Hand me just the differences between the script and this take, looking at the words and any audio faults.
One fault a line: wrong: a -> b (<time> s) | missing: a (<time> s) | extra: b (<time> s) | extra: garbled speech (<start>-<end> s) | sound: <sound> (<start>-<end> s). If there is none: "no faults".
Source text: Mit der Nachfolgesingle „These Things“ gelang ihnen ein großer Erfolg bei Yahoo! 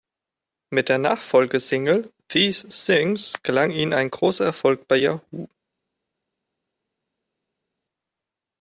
no faults